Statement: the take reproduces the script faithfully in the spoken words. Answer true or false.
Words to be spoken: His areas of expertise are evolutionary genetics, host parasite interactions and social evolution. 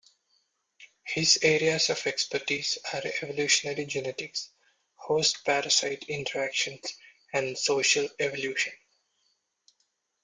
true